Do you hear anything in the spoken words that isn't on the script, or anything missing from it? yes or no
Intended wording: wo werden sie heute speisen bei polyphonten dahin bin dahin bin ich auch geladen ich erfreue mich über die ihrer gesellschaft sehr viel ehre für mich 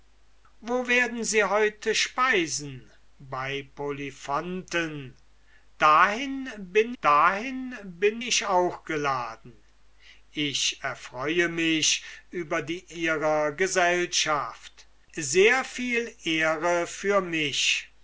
no